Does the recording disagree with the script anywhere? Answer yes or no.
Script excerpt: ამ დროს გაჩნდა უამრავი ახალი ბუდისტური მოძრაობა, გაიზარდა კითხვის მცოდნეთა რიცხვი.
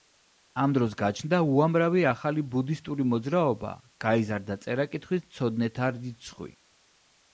yes